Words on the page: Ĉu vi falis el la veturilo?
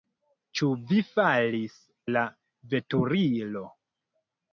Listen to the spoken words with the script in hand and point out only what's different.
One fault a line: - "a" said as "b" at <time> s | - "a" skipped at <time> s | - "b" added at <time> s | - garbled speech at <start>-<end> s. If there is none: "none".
- "el" skipped at 1.8 s